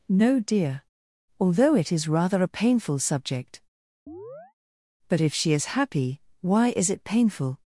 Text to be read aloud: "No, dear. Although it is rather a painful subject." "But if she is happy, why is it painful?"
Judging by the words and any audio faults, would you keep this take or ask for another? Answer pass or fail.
fail